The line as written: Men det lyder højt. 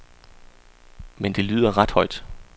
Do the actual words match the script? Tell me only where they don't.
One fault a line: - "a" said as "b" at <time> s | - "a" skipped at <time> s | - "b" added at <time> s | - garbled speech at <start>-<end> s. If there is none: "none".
- "ret" added at 1.8 s